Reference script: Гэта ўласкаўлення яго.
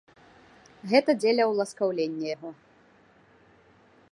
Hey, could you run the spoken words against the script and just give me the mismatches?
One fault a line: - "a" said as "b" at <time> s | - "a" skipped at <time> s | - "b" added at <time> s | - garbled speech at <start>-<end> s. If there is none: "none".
- "дзеля" added at 1.2 s